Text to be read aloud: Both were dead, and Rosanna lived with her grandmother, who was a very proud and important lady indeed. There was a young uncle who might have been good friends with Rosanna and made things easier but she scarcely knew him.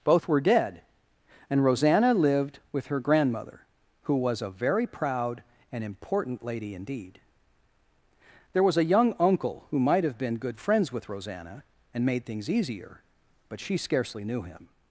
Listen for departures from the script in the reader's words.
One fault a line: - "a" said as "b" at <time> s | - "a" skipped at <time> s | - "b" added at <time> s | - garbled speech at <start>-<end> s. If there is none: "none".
none